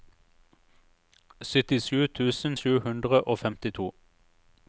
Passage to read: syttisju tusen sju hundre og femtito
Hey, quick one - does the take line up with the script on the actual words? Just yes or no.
yes